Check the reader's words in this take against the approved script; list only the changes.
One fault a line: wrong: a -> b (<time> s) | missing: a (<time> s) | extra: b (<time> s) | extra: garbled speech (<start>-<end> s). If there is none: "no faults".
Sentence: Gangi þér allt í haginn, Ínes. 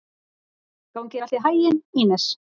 no faults